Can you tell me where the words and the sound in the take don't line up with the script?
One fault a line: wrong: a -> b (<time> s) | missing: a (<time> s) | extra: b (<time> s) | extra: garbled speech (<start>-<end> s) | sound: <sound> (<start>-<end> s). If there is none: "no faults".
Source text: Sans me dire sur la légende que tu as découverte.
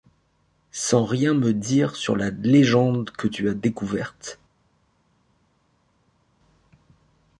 extra: rien (1.1 s)